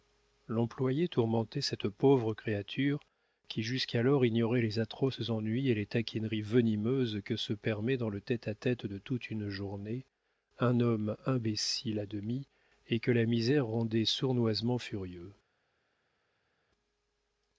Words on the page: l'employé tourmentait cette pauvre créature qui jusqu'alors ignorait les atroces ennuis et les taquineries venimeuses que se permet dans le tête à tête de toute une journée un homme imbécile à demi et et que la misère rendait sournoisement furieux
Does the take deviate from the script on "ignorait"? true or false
false